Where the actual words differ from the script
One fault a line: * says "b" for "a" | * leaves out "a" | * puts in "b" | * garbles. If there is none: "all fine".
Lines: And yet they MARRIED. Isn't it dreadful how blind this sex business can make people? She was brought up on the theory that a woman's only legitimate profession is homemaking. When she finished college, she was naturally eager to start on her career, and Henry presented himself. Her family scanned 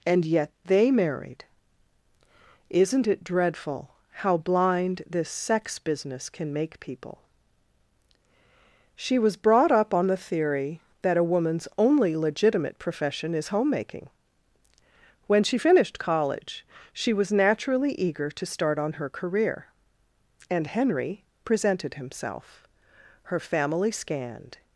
all fine